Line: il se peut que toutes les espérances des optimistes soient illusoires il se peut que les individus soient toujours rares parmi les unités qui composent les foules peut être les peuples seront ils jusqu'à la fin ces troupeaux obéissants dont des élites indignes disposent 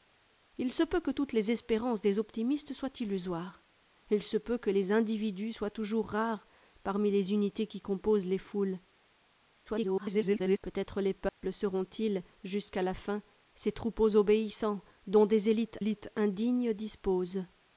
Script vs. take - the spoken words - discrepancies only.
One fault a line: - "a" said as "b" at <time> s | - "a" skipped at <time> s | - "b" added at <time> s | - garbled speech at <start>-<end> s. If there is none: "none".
- garbled speech at 9.7-10.6 s
- "élites" added at 15.8 s